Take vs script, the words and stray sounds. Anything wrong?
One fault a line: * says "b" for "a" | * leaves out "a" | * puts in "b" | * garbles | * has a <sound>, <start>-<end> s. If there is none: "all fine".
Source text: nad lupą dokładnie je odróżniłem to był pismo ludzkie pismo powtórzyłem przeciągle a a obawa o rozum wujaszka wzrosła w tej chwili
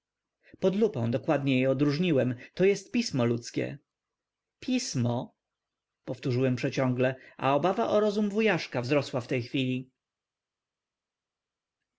* says "pod" for "nad"
* says "jest" for "był"
* leaves out "a"